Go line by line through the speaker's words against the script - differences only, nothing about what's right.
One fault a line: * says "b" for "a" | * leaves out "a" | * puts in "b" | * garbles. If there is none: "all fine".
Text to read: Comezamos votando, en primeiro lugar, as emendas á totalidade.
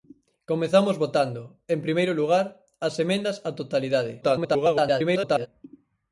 * garbles